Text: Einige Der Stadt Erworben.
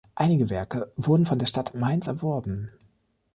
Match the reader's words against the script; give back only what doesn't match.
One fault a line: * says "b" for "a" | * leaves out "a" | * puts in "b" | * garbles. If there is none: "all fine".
* puts in "Werke wurden von"
* puts in "Mainz"